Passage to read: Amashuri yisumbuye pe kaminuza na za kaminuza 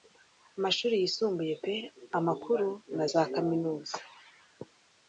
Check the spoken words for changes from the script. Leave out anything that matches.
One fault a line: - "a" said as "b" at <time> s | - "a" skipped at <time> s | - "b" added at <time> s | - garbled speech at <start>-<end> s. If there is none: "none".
- "kaminuza" said as "amakuru" at 2.2 s